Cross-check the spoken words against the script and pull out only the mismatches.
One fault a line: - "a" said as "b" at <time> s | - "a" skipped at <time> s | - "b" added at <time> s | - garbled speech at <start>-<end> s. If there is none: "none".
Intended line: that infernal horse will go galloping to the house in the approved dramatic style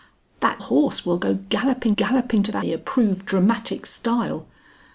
- "infernal" skipped at 0.6 s
- "galloping" added at 2.0 s
- "house in" skipped at 2.6 s